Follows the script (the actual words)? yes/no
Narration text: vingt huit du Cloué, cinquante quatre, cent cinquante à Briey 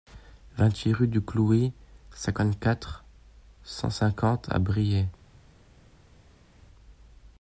no